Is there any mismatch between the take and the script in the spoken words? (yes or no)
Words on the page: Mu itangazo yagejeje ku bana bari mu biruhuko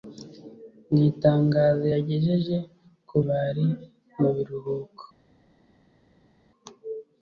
yes